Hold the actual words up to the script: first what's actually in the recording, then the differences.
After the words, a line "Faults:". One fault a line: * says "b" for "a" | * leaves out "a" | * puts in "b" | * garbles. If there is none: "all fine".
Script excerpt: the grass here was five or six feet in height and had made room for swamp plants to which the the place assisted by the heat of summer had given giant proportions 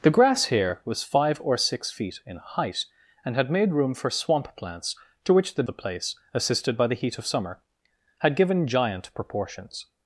the grass here was five or six feet in height and had made room for swamp plants to which the the place assisted by the heat of summer had given giant proportions
Faults:
all fine